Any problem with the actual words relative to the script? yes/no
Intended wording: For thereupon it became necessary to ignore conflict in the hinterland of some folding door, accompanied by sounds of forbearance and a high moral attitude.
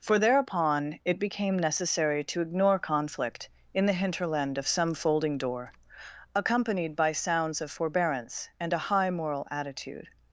no